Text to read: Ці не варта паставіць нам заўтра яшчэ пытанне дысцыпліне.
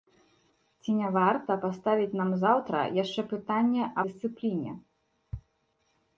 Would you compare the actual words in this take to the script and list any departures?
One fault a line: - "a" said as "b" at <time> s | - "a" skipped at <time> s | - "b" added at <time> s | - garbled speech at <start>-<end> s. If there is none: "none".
none